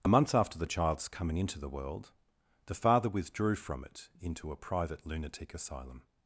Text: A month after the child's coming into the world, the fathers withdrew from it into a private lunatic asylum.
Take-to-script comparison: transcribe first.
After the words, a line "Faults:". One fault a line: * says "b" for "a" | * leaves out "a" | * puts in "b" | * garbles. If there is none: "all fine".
A month after the child's coming into the world, the father withdrew from it into a private lunatic asylum.
Faults:
* says "father" for "fathers"